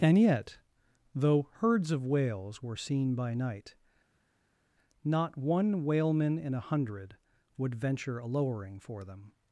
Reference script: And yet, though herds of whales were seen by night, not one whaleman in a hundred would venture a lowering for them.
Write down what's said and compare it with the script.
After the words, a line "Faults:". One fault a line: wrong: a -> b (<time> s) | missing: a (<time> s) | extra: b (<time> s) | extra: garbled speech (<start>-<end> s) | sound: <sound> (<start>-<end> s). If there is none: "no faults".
And yet, though herds of whales were seen by night, not one whaleman in a hundred would venture a lowering for them.
Faults:
no faults